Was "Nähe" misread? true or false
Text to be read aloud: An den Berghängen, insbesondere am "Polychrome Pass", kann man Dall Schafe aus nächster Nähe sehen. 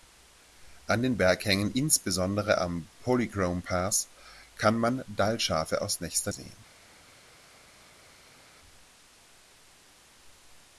true